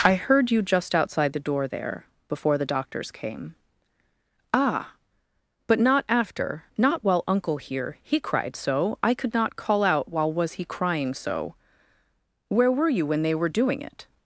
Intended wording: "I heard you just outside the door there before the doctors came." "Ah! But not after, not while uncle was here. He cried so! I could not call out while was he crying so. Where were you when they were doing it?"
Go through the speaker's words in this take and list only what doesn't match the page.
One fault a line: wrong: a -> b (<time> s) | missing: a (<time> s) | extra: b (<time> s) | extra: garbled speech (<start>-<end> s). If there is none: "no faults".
missing: was (7.6 s)